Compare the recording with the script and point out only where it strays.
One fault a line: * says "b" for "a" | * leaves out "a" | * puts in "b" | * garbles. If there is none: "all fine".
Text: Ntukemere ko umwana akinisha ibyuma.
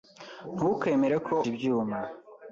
* leaves out "umwana akinisha"